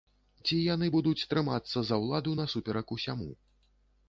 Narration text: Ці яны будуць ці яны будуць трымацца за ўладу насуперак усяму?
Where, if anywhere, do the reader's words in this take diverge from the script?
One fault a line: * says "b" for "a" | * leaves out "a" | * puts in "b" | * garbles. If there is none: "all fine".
* leaves out "ці яны будуць"